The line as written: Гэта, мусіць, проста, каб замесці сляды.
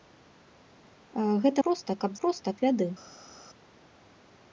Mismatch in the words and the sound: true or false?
true